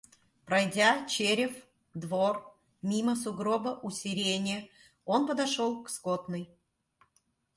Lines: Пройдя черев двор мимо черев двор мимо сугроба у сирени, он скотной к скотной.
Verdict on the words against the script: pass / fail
fail